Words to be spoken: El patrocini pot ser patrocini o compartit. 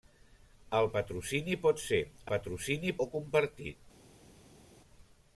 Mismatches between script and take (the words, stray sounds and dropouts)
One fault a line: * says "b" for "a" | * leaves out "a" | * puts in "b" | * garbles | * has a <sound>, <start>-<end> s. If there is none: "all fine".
all fine